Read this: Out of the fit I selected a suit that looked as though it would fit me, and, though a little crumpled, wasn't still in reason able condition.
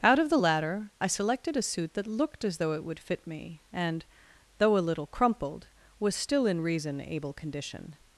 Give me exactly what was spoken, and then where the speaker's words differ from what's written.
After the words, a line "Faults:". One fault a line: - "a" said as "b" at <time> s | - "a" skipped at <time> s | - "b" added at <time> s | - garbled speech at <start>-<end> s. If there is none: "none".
Out of the latter I selected a suit that looked as though it would fit me, and, though a little crumpled, was still in reason able condition.
Faults:
- "fit" said as "latter" at 0.3 s
- "wasn't" said as "was" at 6.0 s